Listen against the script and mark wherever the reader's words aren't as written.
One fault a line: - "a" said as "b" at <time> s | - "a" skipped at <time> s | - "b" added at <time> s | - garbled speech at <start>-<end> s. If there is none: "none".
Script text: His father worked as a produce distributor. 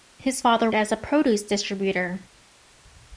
- "worked" skipped at 0.7 s